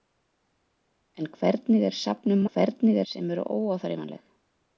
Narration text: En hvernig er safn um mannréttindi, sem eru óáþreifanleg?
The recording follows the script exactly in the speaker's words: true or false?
false